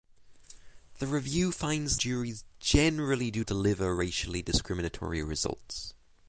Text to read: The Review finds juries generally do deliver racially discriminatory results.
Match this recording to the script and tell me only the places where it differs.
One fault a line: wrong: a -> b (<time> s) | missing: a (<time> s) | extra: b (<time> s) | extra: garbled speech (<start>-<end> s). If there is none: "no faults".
no faults